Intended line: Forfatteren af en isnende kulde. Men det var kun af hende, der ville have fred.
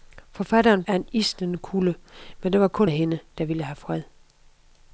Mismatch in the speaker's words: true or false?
false